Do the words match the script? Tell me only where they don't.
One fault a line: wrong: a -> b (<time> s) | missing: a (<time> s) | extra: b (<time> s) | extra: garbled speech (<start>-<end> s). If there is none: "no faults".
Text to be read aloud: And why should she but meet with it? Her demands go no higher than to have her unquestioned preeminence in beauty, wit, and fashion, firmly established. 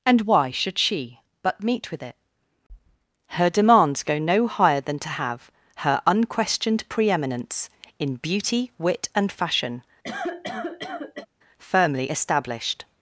no faults